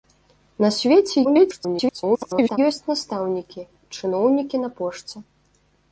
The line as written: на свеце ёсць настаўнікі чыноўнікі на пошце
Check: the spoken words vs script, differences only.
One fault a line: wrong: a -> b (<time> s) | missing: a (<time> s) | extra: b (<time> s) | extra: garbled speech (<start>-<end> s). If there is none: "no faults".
extra: garbled speech (1.2-2.6 s)